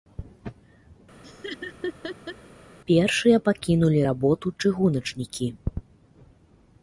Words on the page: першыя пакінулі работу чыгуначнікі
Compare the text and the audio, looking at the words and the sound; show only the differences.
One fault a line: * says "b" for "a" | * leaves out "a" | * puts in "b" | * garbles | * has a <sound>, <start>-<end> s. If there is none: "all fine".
* has a laugh, 1.2-2.4 s